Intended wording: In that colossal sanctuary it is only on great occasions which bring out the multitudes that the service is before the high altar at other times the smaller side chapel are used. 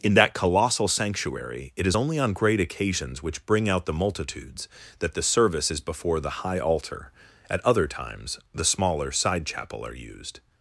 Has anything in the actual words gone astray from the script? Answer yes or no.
no